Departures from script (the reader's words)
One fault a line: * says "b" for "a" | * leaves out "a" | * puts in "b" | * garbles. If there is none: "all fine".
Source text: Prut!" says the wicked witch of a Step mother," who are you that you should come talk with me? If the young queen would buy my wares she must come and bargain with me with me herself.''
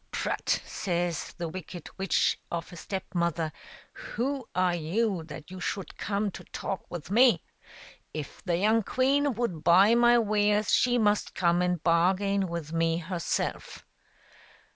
* puts in "to"
* leaves out "with me"